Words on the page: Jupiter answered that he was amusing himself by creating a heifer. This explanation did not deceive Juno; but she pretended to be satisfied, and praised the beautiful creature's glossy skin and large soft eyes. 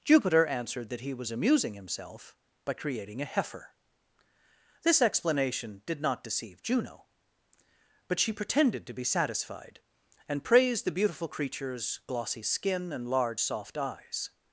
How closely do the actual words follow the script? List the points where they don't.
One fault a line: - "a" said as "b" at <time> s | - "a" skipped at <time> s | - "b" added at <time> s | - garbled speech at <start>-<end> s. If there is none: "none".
none